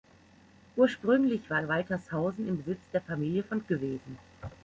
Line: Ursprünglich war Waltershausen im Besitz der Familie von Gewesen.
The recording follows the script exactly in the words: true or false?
true